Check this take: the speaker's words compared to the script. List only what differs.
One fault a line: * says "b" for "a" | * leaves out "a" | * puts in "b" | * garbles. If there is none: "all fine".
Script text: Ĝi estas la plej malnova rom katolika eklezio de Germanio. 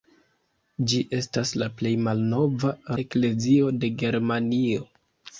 * leaves out "rom katolika"